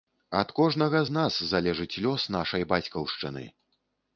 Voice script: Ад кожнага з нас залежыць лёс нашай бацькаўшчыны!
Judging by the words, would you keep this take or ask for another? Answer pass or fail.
pass